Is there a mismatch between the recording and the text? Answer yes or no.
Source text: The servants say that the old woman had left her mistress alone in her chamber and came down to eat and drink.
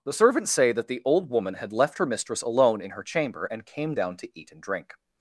no